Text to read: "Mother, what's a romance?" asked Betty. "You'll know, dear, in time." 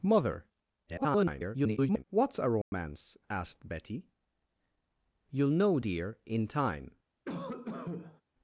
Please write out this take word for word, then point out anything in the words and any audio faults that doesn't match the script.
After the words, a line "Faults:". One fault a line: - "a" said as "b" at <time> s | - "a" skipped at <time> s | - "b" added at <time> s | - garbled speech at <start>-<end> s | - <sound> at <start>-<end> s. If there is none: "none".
"Mother, [garbled] what's a romance?" asked Betty. "You'll know, dear, in time."
Faults:
- garbled speech at 0.9-2.0 s
- dropout at 2.6-2.7 s
- cough at 7.3-8.2 s